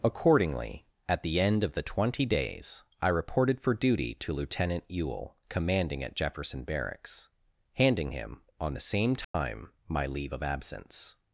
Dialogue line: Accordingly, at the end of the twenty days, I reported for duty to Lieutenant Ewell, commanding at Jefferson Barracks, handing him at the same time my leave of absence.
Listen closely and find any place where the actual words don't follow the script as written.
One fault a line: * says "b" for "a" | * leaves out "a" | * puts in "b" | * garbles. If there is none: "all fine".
* says "on" for "at"